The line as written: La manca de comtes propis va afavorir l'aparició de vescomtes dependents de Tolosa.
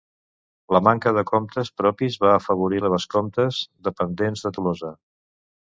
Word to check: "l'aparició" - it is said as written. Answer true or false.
false